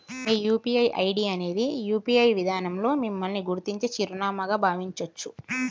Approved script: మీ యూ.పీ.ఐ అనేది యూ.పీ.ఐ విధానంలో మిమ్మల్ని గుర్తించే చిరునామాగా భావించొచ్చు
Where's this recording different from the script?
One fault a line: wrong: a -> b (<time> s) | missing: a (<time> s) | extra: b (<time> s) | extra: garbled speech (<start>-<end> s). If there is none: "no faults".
extra: ఐడి (1.0 s)